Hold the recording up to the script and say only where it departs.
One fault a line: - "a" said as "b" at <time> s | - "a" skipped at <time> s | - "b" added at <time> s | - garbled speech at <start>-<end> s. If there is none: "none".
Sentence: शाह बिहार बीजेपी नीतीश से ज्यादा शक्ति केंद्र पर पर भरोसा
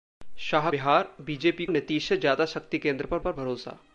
none